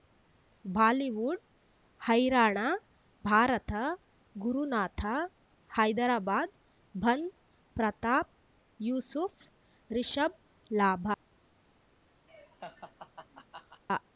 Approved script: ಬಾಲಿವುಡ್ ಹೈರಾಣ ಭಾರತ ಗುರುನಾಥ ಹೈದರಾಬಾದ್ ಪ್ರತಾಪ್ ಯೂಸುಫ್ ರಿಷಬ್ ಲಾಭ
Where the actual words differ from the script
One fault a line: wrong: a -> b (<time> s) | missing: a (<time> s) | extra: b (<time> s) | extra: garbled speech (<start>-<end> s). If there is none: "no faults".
extra: ಬಂಧ್ (6.9 s)